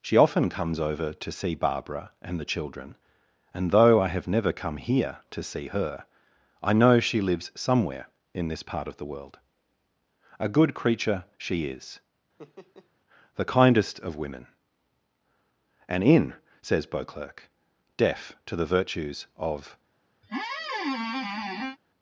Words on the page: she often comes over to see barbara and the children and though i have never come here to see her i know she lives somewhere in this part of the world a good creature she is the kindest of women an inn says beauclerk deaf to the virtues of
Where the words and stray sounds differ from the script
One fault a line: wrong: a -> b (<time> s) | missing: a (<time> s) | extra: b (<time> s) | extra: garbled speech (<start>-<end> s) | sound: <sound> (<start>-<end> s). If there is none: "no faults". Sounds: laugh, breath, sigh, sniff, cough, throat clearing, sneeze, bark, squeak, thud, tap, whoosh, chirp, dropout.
sound: laugh (12.4-12.9 s)
sound: squeak (20.2-21.8 s)